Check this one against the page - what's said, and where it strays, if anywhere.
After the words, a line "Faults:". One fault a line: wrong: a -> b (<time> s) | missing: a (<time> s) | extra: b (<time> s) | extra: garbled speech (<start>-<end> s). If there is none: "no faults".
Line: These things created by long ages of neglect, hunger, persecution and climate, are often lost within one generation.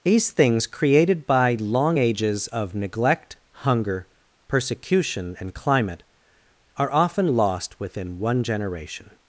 These things created by long ages of neglect, hunger, persecution and climate, are often lost within one generation.
Faults:
no faults